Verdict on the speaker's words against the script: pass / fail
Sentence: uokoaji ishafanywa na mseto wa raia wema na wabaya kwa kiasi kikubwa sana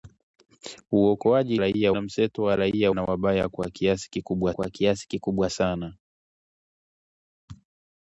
fail